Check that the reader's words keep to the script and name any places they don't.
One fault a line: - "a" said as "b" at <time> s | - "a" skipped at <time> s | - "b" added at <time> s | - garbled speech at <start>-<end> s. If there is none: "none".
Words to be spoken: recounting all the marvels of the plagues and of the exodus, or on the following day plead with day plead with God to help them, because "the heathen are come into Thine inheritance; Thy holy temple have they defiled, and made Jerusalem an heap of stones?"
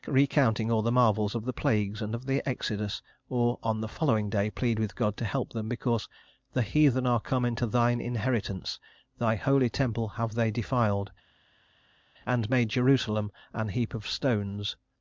- "day plead with" skipped at 4.9 s